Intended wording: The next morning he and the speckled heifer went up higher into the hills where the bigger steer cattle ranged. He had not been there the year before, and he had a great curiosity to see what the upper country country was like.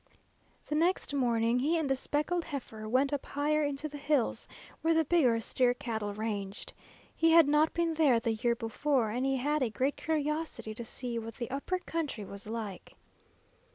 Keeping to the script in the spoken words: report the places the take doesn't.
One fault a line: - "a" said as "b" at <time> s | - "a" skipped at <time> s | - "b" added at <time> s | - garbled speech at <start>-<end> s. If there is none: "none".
- "country" skipped at 12.2 s